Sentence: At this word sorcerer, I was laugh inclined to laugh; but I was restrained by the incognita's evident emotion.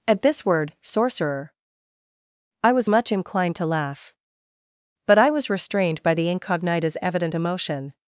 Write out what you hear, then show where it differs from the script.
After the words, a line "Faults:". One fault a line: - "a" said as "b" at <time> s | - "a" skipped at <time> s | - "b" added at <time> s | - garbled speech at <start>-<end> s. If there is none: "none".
At this word sorcerer, I was much inclined to laugh; but I was restrained by the incognita's evident emotion.
Faults:
- "laugh" said as "much" at 2.9 s